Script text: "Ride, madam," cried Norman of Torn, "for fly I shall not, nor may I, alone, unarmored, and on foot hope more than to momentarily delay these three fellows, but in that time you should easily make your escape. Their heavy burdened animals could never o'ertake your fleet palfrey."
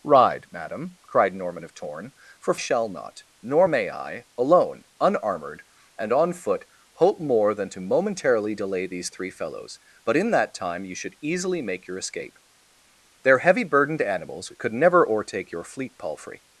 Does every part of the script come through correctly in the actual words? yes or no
no